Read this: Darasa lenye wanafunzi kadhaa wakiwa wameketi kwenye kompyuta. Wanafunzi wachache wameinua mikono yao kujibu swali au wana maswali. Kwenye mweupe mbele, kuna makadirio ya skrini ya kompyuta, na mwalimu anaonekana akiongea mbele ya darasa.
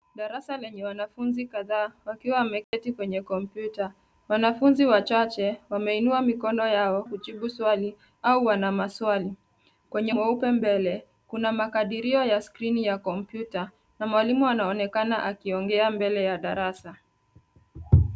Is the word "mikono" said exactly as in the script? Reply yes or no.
yes